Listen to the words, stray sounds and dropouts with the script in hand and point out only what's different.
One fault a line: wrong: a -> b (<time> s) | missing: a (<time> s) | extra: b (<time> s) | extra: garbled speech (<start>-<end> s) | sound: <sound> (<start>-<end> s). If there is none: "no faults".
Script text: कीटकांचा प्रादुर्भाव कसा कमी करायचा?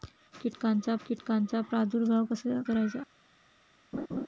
extra: कीटकांचा (1.1 s)
missing: कमी (2.6 s)
sound: laugh (3.9-4.3 s)